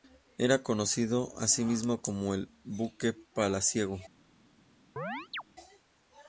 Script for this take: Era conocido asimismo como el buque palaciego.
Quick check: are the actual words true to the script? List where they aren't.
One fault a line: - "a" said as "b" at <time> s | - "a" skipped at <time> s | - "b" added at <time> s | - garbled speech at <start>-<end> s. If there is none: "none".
none